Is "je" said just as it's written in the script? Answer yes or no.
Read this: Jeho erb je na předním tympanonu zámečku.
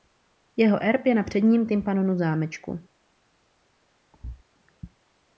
yes